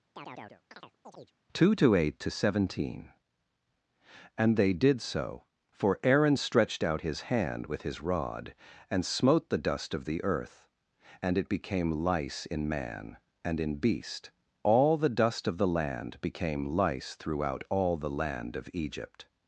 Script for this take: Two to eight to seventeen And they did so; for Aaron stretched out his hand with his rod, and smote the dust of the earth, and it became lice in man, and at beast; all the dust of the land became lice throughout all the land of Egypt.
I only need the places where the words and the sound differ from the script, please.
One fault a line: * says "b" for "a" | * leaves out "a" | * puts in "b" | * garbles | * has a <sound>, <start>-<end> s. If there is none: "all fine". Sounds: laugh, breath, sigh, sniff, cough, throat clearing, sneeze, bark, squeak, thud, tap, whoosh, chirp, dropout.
* has a chirp, 0.1-1.3 s
* says "in" for "at"